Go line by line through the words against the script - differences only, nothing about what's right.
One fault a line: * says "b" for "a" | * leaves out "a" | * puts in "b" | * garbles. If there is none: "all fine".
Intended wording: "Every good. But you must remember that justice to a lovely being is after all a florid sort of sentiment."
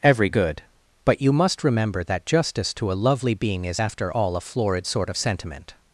all fine